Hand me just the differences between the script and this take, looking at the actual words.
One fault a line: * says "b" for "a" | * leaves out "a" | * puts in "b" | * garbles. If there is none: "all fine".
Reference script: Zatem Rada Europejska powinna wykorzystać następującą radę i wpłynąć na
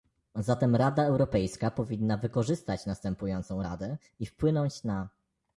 all fine